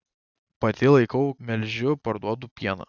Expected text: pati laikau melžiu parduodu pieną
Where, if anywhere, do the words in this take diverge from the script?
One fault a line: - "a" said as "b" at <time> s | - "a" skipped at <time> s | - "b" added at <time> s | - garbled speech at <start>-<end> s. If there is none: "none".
none